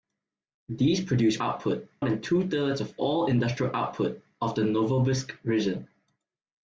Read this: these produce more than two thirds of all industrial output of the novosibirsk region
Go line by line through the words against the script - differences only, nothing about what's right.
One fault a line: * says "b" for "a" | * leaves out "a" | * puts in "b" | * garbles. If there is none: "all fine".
* says "output" for "more"